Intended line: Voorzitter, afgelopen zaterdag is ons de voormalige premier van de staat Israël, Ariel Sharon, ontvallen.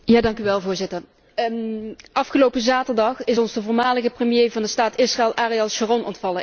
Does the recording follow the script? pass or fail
pass